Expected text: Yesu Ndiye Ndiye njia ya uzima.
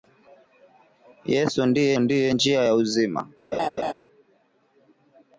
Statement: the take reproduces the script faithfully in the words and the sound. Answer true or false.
false